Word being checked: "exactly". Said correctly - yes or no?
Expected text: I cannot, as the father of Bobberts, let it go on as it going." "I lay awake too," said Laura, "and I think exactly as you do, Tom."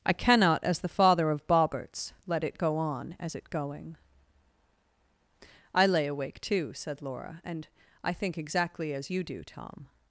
yes